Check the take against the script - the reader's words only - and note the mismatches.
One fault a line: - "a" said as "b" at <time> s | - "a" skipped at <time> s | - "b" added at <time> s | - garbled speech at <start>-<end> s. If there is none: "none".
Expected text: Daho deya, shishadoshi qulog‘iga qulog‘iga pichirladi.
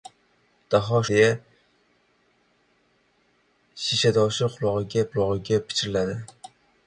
none